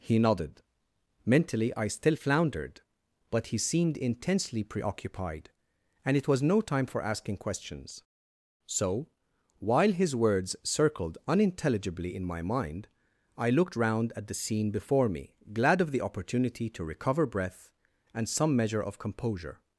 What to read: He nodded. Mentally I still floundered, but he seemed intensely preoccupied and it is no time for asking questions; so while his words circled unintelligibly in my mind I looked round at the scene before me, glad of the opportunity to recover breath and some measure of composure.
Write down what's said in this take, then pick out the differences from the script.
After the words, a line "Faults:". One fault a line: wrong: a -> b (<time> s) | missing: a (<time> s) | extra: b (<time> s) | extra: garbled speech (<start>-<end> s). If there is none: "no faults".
He nodded. Mentally I still floundered, but he seemed intensely preoccupied and it was no time for asking questions; so while his words circled unintelligibly in my mind I looked round at the scene before me, glad of the opportunity to recover breath and some measure of composure.
Faults:
wrong: is -> was (6.3 s)